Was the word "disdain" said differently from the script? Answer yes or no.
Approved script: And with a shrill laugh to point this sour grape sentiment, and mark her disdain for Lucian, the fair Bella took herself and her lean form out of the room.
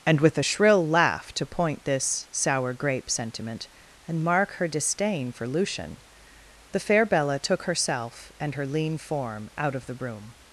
no